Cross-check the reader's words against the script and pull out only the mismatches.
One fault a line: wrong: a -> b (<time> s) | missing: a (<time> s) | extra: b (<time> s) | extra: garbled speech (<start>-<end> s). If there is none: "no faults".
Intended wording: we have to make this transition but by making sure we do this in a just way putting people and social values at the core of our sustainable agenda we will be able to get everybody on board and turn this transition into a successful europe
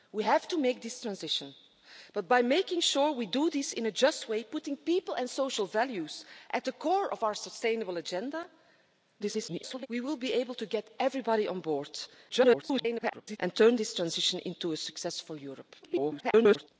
extra: garbled speech (9.2-9.9 s)
extra: garbled speech (12.3-13.4 s)
extra: garbled speech (15.8-16.7 s)